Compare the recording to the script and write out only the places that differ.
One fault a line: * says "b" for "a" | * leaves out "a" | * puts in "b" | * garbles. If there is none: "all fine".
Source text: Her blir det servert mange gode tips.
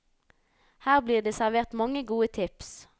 all fine